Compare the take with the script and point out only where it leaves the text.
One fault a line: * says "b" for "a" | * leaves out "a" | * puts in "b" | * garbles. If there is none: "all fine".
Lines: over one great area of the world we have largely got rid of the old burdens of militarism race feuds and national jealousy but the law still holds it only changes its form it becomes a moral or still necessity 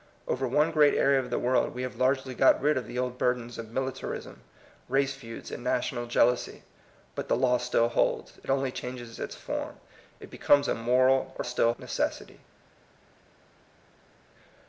all fine